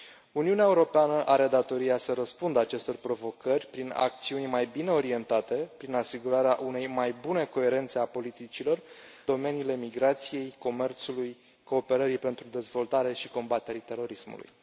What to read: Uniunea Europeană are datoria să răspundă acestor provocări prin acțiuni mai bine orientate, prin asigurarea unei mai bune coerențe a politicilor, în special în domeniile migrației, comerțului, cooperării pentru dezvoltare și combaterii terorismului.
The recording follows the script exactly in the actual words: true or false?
false